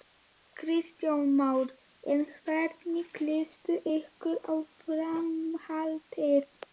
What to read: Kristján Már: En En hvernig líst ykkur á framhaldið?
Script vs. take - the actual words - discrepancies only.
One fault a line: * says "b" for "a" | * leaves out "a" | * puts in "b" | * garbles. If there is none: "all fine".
* leaves out "En"